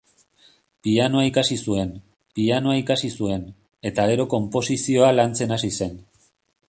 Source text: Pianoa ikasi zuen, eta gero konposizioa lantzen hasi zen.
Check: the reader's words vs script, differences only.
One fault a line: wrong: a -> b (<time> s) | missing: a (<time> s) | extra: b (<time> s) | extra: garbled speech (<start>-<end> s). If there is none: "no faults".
extra: pianoa ikasi zuen (2.4 s)